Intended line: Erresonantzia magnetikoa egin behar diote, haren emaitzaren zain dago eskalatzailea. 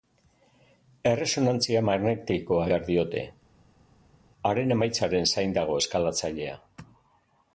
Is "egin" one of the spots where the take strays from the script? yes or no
yes